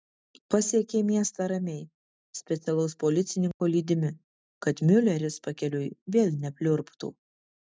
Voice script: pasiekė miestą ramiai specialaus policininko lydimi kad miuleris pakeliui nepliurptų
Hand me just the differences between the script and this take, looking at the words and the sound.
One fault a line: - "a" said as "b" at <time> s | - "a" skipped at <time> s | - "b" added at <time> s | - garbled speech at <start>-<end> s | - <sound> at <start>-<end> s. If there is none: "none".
- dropout at 3.5-3.6 s
- "vėl" added at 6.2 s